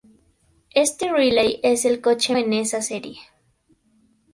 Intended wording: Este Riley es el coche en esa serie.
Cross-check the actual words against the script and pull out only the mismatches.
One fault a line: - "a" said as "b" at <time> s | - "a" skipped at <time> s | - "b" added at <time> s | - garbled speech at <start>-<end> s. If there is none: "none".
none